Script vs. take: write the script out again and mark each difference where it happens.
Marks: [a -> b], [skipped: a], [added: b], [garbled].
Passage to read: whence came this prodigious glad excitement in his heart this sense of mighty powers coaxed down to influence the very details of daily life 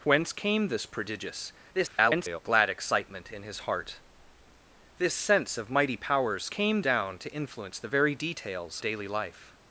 whence came this prodigious [garbled] glad excitement in his heart this sense of mighty powers [coaxed -> came] down to influence the very details [skipped: of] daily life